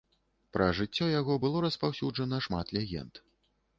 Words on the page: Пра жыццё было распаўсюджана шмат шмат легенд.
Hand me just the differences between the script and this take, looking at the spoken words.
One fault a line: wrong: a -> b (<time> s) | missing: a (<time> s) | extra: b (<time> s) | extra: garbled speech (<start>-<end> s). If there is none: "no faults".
extra: яго (1.2 s)
missing: шмат (2.7 s)